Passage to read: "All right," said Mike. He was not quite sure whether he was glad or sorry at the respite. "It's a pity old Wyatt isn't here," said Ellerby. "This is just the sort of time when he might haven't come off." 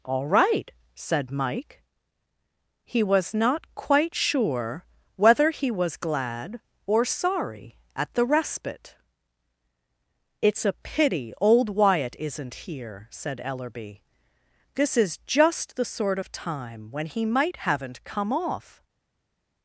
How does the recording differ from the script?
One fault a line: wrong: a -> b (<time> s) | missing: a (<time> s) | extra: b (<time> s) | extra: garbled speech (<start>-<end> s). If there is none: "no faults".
no faults